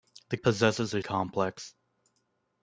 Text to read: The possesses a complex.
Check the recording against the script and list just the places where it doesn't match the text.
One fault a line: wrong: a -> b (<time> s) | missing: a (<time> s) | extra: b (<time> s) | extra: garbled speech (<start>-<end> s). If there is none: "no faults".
no faults